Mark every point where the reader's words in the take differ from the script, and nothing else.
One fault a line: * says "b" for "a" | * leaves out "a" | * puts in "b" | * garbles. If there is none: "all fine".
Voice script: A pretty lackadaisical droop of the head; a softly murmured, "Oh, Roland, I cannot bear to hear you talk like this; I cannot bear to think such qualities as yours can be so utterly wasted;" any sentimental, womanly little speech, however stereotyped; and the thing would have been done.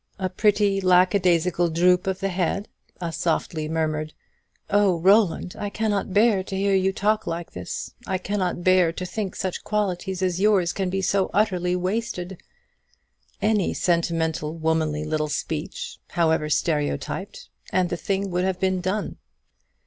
all fine